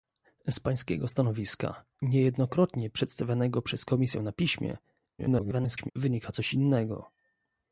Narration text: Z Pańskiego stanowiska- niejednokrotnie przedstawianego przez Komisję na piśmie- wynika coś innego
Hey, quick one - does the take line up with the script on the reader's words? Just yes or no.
no